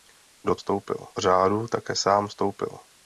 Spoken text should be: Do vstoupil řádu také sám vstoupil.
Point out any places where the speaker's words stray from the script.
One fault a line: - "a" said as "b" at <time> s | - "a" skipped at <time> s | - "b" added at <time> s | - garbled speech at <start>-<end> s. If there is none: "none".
none